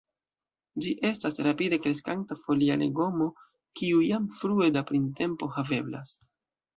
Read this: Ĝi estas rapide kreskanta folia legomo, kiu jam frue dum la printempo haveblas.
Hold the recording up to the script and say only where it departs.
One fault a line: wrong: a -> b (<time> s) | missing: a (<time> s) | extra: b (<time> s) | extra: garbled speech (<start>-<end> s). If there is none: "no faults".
missing: dum (4.7 s)